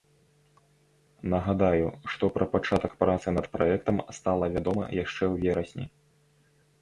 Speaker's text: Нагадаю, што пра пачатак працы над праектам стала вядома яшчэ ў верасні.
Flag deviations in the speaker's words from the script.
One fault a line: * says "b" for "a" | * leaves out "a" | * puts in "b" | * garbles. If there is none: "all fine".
all fine